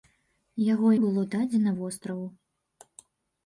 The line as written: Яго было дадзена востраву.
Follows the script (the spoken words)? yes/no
yes